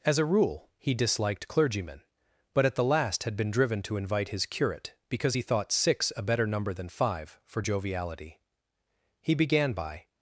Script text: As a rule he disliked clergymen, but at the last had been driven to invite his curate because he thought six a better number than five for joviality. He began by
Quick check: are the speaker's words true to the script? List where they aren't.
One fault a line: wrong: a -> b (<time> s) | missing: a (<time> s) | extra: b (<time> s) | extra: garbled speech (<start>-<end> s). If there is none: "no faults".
no faults